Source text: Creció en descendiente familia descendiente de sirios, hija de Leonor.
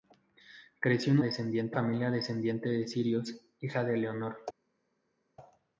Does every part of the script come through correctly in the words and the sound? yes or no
yes